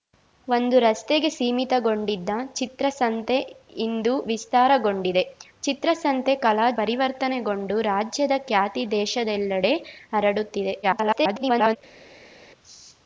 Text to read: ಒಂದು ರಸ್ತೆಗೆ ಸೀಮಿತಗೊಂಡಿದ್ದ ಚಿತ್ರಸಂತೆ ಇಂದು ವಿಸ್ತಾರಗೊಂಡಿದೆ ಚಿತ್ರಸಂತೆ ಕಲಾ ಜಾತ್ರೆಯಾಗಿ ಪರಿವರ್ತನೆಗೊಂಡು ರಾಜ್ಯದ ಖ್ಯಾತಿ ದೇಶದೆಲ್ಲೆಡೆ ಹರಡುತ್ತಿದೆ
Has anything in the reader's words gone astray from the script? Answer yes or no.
yes